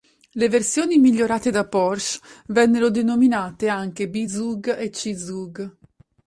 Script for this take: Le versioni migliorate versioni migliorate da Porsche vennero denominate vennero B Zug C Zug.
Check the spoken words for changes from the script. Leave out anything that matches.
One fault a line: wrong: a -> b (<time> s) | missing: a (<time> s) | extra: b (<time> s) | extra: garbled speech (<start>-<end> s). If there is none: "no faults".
missing: versioni migliorate (1.5 s)
wrong: vennero -> anche (3.7 s)
extra: e (4.8 s)